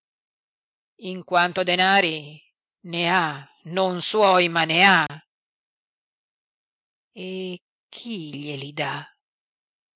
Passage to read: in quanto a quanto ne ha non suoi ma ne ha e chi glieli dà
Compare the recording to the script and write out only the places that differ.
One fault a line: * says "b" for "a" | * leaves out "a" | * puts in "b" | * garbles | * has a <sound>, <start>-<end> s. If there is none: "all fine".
* says "denari" for "quanto"
* has a dropout, 5.1-5.1 s